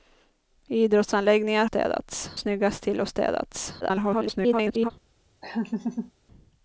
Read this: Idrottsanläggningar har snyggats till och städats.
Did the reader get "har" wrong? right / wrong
wrong